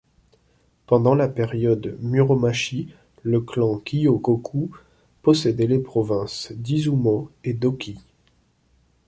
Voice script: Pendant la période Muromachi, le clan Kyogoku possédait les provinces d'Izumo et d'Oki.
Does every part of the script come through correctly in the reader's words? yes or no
yes